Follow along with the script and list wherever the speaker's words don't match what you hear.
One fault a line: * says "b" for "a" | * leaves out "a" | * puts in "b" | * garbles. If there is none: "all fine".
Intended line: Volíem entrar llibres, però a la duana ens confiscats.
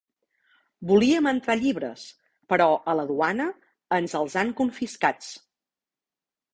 * puts in "els han"